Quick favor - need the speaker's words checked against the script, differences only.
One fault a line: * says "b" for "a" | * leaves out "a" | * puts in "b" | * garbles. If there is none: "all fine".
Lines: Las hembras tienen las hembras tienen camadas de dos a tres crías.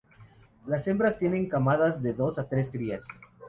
* leaves out "las hembras tienen"